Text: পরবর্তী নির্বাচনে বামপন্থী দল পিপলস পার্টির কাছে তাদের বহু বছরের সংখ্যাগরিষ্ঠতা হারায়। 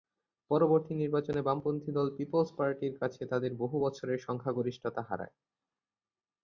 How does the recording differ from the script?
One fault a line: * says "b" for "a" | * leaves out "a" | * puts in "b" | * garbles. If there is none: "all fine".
all fine